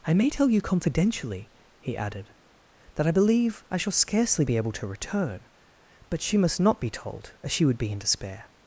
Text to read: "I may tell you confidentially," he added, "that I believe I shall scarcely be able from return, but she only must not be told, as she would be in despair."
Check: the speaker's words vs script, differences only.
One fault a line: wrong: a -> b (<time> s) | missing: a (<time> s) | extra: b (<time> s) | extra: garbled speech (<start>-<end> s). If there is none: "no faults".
wrong: from -> to (4.7 s)
missing: only (6.4 s)